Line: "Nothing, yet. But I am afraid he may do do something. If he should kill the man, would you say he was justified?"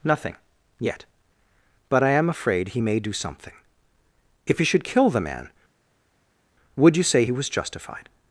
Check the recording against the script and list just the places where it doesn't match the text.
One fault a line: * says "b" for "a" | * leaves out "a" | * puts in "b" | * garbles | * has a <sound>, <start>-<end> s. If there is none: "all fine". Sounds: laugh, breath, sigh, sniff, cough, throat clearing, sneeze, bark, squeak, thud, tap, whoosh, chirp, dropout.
* leaves out "do"